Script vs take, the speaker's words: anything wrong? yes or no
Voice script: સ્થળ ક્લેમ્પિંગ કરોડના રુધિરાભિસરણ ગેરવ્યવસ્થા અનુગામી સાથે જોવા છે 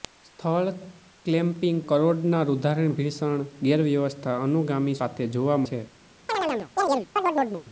no